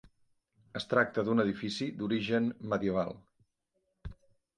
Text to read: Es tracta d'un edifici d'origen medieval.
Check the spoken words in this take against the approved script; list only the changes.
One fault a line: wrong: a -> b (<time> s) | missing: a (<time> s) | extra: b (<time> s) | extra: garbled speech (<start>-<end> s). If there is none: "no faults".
no faults